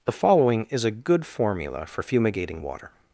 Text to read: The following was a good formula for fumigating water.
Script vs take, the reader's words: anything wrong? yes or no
yes